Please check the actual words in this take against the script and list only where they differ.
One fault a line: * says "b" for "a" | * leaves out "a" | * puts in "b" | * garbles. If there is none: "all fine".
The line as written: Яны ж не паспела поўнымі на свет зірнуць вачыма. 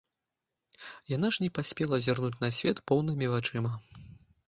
* says "Яна" for "Яны"
* says "зірнуць" for "поўнымі"
* says "поўнымі" for "зірнуць"